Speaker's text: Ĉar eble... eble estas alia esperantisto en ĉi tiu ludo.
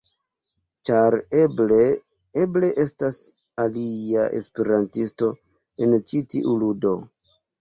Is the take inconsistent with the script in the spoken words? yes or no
no